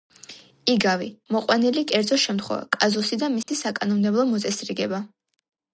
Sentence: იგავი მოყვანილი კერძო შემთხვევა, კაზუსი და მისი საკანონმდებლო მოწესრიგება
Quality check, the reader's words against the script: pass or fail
pass